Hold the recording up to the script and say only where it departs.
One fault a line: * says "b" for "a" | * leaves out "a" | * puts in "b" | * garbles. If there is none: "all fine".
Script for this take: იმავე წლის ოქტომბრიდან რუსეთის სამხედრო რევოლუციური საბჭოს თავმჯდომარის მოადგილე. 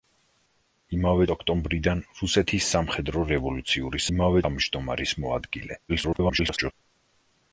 * leaves out "წლის"
* says "იმავე" for "საბჭოს"
* garbles